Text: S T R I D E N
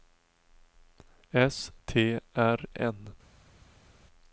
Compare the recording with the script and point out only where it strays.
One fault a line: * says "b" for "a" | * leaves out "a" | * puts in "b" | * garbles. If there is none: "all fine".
* leaves out "I D E"